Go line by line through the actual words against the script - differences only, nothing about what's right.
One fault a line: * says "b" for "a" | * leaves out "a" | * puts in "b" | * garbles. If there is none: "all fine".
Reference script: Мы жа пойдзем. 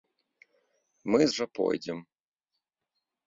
all fine